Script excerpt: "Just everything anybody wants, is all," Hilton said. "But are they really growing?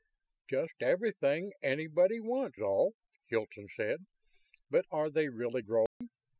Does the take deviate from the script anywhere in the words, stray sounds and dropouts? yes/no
yes